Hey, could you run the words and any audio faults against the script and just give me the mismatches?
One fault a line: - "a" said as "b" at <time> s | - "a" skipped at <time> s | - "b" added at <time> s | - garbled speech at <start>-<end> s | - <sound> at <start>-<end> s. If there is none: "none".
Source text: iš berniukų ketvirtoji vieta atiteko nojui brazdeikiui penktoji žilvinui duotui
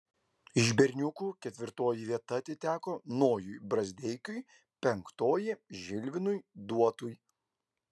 none